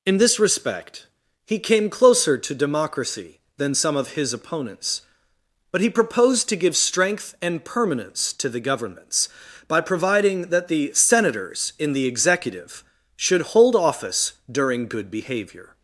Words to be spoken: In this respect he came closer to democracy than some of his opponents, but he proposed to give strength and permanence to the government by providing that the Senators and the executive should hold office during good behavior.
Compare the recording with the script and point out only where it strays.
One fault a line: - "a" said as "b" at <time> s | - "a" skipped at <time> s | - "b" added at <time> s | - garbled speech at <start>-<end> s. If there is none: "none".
- "government" said as "governments" at 8.6 s
- "and" said as "in" at 11.8 s